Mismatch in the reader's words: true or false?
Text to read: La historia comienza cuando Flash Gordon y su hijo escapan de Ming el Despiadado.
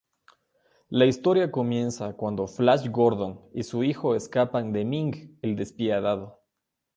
false